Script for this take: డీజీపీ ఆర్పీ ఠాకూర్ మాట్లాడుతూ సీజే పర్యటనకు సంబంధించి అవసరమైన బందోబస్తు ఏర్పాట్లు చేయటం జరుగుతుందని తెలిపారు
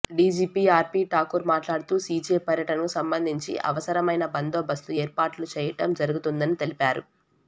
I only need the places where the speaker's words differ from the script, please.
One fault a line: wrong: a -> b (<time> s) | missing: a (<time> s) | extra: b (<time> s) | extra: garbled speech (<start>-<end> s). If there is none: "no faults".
no faults